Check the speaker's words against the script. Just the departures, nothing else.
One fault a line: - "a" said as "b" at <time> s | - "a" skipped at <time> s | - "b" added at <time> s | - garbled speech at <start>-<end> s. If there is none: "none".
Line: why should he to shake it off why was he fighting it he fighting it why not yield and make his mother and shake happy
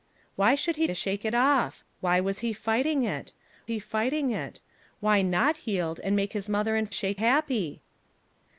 none